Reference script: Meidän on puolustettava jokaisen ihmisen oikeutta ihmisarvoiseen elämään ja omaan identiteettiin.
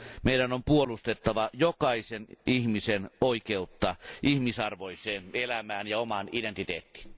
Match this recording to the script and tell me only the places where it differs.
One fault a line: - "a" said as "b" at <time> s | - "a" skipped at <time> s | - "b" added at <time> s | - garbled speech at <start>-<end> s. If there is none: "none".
none